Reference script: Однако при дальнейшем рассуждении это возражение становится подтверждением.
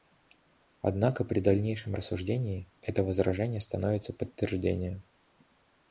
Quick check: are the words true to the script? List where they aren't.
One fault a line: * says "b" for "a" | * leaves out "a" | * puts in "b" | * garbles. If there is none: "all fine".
all fine